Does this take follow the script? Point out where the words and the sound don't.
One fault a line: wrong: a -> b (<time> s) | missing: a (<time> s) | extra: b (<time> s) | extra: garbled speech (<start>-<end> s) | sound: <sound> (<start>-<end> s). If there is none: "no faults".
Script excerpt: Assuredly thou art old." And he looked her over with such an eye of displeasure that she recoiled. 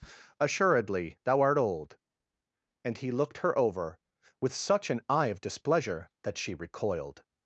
no faults